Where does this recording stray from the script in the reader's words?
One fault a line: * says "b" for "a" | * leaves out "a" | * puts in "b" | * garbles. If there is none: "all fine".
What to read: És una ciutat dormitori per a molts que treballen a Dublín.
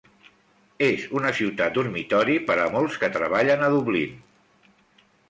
all fine